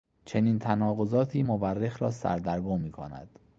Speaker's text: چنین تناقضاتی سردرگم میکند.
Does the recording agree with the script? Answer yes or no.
no